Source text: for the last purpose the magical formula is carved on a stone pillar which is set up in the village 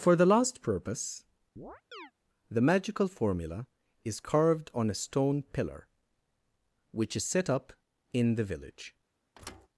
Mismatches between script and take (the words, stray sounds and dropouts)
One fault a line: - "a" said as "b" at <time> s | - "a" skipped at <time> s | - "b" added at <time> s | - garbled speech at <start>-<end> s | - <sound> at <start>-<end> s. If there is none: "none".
- chirp at 1.6-2.1 s
- thud at 9.3-9.7 s